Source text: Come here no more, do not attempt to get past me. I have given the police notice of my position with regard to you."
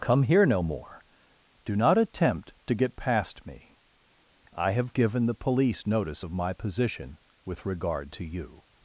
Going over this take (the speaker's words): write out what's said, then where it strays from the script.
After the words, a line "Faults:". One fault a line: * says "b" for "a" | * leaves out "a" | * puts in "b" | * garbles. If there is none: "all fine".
Come here no more, do not attempt to get past me. I have given the police notice of my position with regard to you."
Faults:
all fine